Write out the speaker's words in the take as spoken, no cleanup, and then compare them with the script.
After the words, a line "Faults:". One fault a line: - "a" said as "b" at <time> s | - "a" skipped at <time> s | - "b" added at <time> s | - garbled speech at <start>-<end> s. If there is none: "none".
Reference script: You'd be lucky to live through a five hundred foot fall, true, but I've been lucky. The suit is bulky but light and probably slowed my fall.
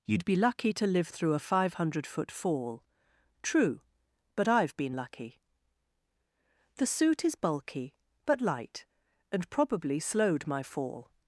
You'd be lucky to live through a five hundred foot fall, true, but I've been lucky. The suit is bulky but light and probably slowed my fall.
Faults:
none